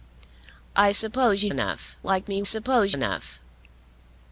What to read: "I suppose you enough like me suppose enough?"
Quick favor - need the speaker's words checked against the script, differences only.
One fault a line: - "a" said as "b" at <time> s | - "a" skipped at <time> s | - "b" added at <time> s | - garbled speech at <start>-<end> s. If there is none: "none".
none